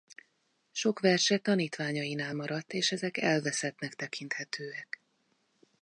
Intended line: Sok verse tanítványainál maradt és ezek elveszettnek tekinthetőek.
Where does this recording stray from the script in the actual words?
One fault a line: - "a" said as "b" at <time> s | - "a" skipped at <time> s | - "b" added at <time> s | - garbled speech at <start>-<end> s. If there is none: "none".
none